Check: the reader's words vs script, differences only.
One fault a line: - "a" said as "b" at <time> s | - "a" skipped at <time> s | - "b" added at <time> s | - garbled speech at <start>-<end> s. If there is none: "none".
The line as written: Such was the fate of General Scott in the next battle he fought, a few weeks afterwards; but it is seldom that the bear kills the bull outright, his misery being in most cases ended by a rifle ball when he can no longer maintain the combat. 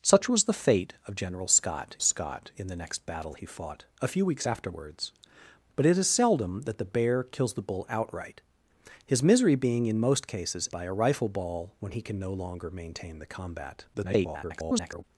- "Scott" added at 2.0 s
- "ended" skipped at 10.7 s
- garbled speech at 13.9-15.0 s